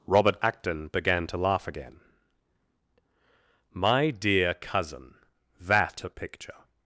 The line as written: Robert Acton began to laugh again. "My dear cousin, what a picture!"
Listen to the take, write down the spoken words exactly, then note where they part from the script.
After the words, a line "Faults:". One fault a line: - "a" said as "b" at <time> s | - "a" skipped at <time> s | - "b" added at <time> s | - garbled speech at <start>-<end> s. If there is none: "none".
Robert Acton began to laugh again. "My dear cousin, that a picture!"
Faults:
- "what" said as "that" at 5.6 s